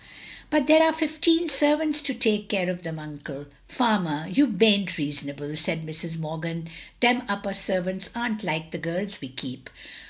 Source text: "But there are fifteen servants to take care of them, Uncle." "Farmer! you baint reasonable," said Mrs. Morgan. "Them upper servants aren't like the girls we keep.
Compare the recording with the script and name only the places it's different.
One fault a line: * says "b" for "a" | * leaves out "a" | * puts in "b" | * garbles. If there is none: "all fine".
all fine